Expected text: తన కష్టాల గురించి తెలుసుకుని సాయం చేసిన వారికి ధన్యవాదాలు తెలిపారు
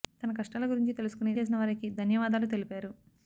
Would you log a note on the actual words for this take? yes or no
yes